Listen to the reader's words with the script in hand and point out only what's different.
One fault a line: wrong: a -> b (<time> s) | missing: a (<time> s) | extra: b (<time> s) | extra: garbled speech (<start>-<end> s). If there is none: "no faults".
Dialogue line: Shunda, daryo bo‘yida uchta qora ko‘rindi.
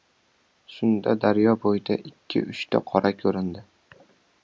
extra: ikki (2.1 s)